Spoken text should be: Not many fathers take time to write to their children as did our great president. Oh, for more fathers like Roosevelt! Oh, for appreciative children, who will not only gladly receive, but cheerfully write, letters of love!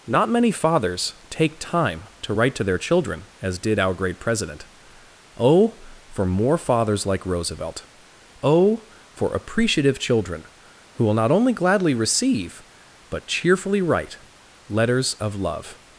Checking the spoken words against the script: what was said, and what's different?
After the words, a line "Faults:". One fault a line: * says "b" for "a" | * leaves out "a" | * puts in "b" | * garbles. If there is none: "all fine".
Not many fathers take time to write to their children as did our great president. Oh, for more fathers like Roosevelt! Oh, for appreciative children, who will not only gladly receive, but cheerfully write, letters of love!
Faults:
all fine